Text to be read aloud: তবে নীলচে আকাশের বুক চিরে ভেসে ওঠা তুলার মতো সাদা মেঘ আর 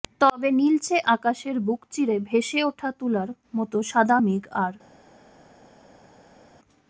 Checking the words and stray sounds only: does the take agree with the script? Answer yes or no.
yes